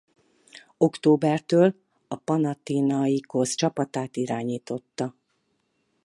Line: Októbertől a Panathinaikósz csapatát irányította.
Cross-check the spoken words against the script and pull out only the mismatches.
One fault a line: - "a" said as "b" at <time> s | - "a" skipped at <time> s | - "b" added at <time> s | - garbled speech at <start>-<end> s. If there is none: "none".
none